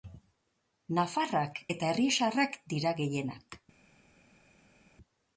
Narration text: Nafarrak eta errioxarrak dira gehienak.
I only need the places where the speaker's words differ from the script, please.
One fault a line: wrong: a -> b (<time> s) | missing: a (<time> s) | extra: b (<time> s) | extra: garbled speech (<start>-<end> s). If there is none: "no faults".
no faults